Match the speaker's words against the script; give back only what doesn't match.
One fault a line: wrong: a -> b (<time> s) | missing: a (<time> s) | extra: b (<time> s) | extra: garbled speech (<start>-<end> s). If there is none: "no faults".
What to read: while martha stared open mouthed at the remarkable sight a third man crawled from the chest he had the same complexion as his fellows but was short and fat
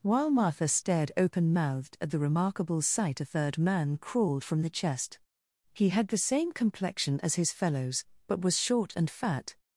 no faults